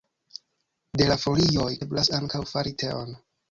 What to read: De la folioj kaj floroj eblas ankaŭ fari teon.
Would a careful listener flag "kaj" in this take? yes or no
yes